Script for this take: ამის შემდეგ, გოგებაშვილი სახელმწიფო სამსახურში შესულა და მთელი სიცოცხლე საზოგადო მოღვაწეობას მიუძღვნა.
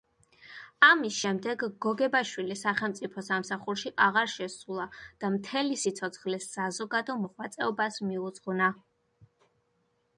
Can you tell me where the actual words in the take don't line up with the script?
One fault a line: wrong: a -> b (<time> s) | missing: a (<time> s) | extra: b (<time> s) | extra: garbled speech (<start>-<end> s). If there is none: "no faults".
extra: აღარ (4.1 s)